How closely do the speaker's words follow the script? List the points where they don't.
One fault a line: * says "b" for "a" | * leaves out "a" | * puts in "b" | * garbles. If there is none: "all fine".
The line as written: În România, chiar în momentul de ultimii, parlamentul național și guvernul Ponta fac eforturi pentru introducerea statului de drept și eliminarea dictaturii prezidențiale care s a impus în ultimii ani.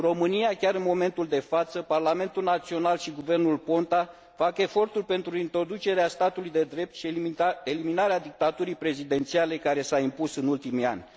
* says "față" for "ultimii"